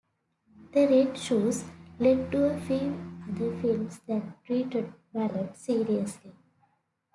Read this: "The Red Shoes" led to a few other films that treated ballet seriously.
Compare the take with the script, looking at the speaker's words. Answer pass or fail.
pass